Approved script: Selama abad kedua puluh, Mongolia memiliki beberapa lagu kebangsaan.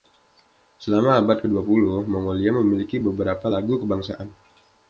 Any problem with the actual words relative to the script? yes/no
no